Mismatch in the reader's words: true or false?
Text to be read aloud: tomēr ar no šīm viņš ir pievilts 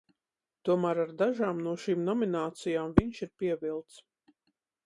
true